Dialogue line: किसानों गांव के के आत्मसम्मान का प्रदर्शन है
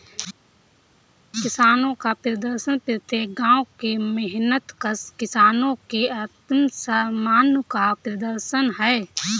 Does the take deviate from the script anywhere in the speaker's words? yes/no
yes